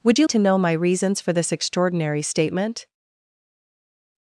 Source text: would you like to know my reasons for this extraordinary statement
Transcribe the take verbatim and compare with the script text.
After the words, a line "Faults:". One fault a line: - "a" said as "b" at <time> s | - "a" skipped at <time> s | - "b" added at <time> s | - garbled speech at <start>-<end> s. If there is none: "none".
would you to know my reasons for this extraordinary statement
Faults:
- "like" skipped at 0.3 s